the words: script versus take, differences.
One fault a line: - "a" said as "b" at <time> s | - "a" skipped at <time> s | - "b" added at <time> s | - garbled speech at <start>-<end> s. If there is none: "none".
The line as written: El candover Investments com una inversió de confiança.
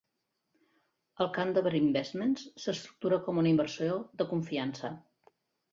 - "s'estructura" added at 2.6 s